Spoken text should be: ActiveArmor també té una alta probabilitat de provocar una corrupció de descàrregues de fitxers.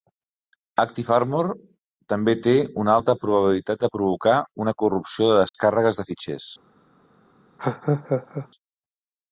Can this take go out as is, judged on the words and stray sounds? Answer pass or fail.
fail